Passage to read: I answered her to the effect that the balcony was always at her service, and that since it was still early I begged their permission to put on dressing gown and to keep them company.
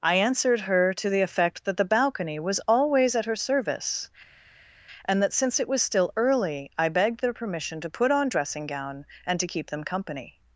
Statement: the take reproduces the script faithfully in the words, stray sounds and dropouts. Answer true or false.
true